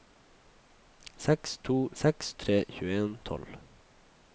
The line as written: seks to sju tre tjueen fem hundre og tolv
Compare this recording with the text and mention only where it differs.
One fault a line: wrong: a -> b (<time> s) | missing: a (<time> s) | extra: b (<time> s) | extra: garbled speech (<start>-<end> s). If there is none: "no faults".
wrong: sju -> seks (2.0 s)
missing: fem hundre (3.2 s)